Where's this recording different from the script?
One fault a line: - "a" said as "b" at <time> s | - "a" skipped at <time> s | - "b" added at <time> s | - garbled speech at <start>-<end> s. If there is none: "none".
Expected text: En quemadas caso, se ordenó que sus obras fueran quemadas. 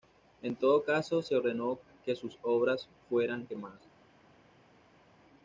- "quemadas" said as "todo" at 0.6 s